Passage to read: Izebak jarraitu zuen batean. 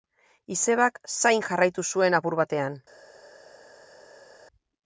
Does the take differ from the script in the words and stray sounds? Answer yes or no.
yes